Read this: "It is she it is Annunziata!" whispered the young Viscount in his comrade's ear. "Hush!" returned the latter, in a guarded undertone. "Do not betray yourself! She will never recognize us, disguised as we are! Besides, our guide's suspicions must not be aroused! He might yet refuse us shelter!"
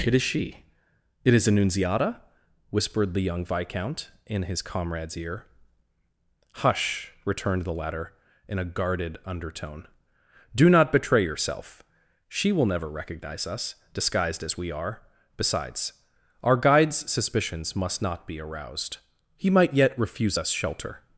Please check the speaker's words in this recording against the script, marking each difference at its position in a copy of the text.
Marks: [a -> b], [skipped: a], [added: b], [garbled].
"It is she it is Annunziata!" whispered the young Viscount in his comrade's ear. "Hush!" returned the latter, in a guarded undertone. "Do not betray yourself! She will never recognize us, disguised as we are! Besides, our guide's suspicions must not be aroused! He might yet refuse us shelter!"